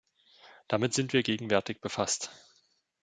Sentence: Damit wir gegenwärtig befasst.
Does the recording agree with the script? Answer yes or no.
no